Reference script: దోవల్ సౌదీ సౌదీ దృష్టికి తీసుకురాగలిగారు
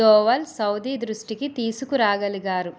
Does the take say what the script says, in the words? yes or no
no